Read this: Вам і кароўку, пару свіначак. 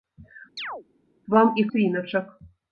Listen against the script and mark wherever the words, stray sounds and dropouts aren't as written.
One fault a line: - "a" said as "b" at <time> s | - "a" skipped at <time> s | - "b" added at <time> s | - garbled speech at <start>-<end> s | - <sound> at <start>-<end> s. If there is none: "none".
- chirp at 0.6-0.8 s
- "кароўку пару" skipped at 1.6 s